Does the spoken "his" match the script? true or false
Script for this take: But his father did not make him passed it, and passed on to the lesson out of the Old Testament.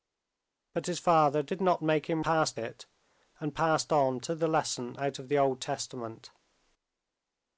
true